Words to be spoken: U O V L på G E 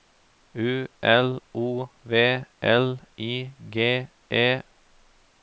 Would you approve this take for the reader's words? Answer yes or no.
no